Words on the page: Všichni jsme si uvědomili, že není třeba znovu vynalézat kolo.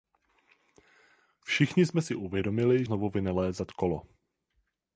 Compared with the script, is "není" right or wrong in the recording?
wrong